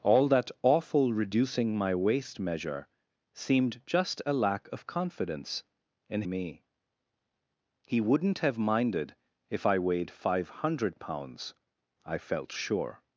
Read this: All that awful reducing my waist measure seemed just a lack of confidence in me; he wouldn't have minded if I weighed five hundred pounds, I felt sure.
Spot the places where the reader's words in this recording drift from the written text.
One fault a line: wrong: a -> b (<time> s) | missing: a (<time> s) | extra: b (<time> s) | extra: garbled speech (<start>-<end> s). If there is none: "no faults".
no faults